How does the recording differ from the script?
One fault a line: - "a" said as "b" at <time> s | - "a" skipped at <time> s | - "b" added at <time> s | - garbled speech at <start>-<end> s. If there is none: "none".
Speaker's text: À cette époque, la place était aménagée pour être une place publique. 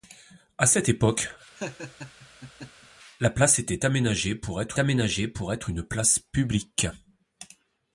- "aménagée pour être" added at 4.8 s